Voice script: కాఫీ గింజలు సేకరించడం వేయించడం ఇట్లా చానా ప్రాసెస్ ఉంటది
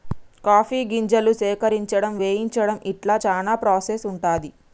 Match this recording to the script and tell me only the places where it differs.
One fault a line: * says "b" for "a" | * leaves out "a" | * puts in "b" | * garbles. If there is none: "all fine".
all fine